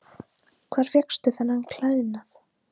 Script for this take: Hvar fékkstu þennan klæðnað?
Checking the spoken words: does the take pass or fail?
pass